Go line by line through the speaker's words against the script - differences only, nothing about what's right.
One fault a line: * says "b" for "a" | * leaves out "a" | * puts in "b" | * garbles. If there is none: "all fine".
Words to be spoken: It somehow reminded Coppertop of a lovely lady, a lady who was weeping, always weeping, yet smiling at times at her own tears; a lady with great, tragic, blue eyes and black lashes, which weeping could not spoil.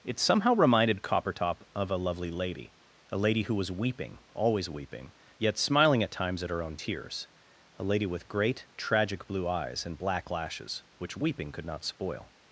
all fine